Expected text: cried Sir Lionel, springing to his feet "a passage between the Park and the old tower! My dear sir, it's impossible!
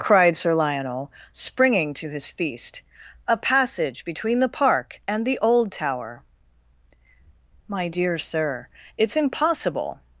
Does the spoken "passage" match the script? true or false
true